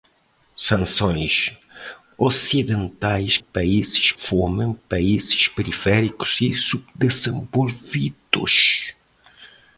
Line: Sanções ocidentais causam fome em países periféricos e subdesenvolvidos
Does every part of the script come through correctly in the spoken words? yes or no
no